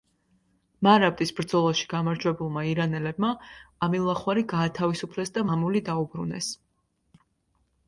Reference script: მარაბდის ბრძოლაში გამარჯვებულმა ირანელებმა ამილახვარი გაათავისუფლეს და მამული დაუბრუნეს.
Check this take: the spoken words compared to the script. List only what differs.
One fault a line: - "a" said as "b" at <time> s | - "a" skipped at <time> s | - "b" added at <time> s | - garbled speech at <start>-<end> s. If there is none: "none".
none